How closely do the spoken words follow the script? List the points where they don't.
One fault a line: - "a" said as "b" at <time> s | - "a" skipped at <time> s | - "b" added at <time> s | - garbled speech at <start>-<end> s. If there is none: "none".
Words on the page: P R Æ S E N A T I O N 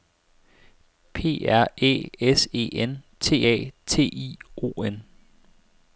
- "T" added at 3.2 s